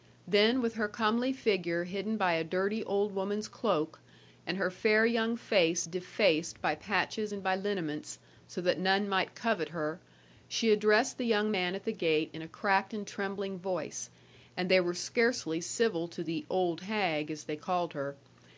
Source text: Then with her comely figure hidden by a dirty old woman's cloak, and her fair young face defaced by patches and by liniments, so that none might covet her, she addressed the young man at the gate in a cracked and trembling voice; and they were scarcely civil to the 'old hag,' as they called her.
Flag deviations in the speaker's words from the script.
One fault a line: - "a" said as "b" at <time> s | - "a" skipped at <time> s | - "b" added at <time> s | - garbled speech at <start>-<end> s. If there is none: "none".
none